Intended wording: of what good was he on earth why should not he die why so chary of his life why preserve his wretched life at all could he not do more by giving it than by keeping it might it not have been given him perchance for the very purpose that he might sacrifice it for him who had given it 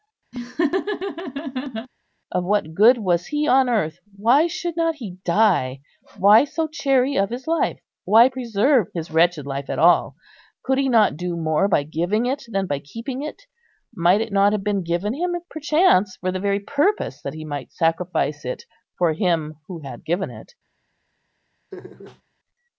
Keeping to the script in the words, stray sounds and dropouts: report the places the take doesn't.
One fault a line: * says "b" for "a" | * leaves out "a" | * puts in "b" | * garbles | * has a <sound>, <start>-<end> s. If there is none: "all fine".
* has a laugh, 0.3-1.9 s
* has a laugh, 21.7-22.2 s